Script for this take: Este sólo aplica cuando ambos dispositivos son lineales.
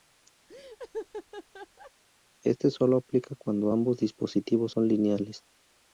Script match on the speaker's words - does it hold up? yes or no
yes